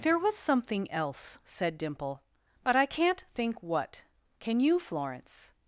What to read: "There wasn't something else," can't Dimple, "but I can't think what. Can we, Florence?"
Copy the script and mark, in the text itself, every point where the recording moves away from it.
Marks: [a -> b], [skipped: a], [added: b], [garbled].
"There [wasn't -> was] something else," [can't -> said] Dimple, "but I can't think what. Can [we, -> you] Florence?"